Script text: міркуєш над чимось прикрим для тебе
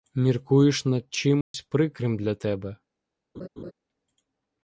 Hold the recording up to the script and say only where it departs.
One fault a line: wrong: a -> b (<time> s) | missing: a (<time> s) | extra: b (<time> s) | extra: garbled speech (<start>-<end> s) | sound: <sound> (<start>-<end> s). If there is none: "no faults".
sound: dropout (1.4-1.5 s)
sound: laugh (3.3-3.7 s)